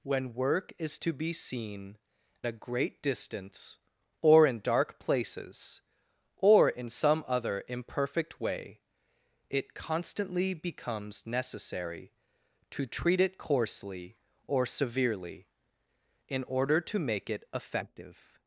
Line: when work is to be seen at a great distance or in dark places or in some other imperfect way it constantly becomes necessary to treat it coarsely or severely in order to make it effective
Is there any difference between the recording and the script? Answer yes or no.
yes